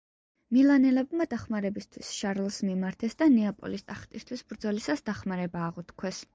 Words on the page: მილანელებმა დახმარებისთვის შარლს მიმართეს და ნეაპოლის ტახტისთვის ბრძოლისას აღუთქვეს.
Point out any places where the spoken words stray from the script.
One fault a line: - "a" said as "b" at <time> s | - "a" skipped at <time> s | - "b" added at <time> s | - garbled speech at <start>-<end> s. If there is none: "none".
- "დახმარება" added at 5.1 s